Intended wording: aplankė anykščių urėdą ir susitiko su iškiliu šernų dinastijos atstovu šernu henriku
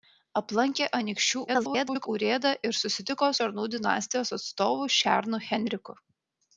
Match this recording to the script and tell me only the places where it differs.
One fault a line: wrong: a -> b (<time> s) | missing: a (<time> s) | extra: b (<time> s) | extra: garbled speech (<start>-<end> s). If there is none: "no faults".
extra: garbled speech (1.5-2.1 s)
missing: su iškiliu (3.3 s)